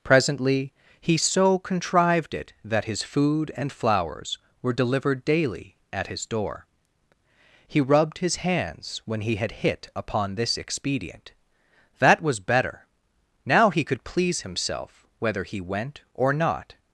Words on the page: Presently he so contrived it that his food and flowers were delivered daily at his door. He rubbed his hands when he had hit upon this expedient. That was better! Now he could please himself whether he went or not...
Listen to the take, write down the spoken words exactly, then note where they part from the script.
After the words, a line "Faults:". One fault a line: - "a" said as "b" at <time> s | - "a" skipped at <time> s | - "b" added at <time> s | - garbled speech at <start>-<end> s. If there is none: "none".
Presently he so contrived it that his food and flowers were delivered daily at his door. He rubbed his hands when he had hit upon this expedient. That was better! Now he could please himself whether he went or not...
Faults:
none